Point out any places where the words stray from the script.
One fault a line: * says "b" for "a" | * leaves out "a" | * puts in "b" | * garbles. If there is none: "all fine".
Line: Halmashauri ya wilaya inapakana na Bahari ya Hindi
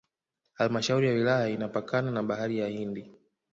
all fine